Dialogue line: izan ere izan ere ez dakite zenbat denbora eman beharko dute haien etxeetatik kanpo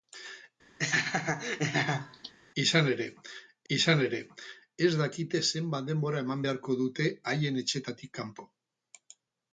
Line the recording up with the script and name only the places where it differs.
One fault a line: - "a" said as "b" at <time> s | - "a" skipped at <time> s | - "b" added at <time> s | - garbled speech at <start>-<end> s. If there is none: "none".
none